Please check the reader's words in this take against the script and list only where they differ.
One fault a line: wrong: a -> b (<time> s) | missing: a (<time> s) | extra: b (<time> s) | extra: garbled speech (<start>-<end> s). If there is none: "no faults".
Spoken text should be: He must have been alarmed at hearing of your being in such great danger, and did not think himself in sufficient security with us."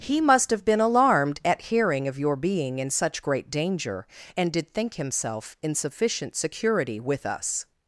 missing: not (4.7 s)